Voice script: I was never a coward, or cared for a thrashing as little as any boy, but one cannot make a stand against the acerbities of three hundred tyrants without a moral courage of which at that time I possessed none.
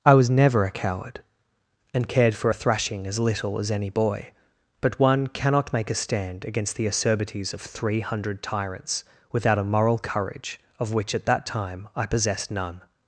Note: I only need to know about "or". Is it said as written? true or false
false